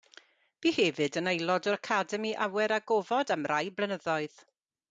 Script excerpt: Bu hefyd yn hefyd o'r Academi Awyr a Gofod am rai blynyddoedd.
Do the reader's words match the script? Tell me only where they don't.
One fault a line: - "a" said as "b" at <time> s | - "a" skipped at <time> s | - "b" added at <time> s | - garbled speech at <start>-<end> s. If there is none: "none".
- "hefyd" said as "aelod" at 1.3 s